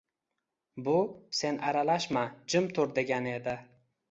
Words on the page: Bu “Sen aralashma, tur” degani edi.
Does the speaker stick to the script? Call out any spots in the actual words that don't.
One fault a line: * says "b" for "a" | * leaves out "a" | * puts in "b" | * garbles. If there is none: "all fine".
* puts in "jim"